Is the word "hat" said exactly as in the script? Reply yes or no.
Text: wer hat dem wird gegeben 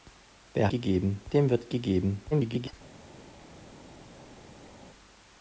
no